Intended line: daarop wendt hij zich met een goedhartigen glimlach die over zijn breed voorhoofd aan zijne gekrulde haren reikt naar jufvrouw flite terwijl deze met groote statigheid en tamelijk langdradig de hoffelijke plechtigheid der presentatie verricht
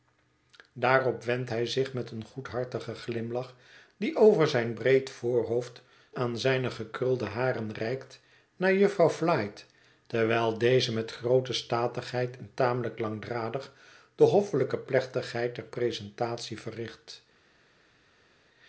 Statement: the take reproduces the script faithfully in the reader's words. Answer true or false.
true